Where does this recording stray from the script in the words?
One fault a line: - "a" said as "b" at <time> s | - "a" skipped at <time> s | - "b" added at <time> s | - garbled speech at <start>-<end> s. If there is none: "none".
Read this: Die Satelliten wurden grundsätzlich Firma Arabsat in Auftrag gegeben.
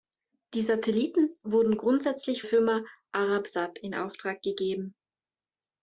none